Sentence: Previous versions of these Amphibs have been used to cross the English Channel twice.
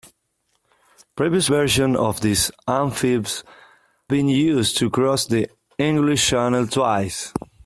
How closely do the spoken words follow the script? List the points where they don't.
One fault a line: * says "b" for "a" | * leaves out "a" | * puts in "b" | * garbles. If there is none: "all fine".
* leaves out "have"